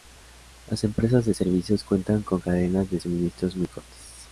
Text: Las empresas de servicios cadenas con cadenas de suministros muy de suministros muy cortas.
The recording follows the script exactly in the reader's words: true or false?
false